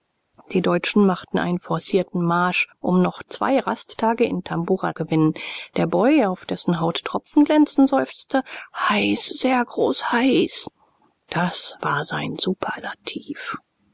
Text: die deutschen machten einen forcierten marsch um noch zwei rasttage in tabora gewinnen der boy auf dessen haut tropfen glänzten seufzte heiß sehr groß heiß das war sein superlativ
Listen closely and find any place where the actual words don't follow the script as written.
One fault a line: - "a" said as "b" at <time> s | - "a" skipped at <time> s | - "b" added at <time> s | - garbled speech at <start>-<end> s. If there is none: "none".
none